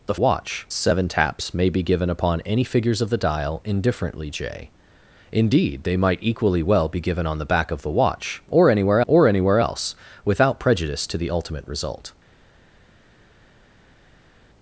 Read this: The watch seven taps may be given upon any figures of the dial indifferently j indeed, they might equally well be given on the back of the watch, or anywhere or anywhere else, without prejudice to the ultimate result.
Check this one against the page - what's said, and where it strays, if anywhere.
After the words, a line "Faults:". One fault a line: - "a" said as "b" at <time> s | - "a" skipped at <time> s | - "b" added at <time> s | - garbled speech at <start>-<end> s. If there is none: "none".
The watch seven taps may be given upon any figures of the dial indifferently j indeed, they might equally well be given on the back of the watch, or anywhere or anywhere else, without prejudice to the ultimate result.
Faults:
none